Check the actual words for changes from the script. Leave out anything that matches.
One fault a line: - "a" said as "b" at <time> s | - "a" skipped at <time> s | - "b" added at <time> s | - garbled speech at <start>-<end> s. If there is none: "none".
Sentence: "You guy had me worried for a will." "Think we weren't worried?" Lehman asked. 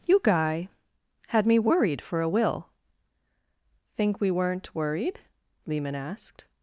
none